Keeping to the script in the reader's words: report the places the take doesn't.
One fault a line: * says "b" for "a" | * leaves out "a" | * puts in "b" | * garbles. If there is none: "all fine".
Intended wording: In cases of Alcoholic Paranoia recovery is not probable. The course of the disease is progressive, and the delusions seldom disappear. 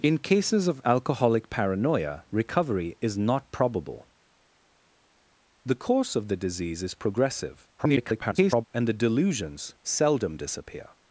* garbles